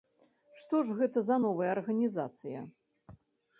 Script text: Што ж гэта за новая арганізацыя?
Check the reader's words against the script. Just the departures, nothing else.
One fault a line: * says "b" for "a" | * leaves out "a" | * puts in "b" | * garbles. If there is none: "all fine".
all fine